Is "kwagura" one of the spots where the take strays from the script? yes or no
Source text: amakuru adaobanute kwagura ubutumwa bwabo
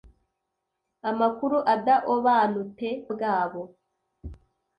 yes